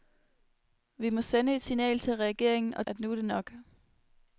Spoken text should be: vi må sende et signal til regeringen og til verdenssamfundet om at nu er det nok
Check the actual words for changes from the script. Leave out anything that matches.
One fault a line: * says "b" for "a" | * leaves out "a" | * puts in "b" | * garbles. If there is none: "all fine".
* leaves out "til verdenssamfundet om"